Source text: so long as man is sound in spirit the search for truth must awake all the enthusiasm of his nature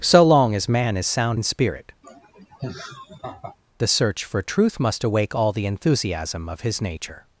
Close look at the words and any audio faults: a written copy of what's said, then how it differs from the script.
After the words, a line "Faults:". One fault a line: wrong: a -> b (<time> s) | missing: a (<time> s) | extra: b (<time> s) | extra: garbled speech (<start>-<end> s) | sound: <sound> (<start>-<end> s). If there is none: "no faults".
so long as man is sound in spirit the search for truth must awake all the enthusiasm of his nature
Faults:
sound: laugh (2.0-3.6 s)